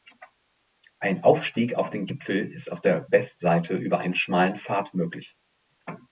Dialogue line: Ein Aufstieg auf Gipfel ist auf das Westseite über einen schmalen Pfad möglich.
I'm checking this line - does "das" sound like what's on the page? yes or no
no